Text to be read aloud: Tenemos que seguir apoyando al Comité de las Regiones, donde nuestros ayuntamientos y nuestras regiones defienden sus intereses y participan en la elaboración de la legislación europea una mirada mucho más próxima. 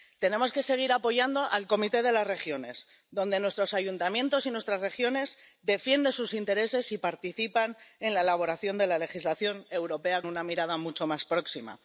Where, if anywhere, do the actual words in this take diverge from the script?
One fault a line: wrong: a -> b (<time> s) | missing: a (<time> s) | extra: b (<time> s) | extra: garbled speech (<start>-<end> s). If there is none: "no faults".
no faults